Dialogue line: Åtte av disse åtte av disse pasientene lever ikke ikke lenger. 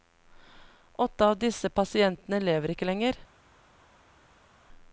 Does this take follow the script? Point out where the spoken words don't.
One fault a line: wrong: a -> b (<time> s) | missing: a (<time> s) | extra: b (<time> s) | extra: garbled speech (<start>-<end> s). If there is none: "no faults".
missing: åtte av disse (1.7 s)
missing: ikke (2.9 s)